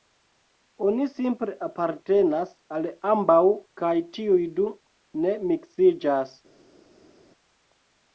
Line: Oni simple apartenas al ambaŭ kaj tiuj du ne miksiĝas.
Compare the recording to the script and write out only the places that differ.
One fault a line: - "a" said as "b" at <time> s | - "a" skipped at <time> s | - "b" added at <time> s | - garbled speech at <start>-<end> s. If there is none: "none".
none